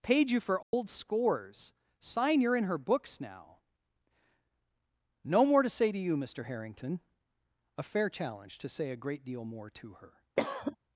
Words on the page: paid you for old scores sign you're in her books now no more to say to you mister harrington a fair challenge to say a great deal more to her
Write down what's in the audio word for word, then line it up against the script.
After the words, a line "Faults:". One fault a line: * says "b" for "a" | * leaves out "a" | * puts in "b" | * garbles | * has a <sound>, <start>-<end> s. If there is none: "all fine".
paid you for old scores sign you're in her books now no more to say to you mister harrington a fair challenge to say a great deal more to her
Faults:
* has a dropout, 0.6-0.7 s
* has a cough, 10.4-10.8 s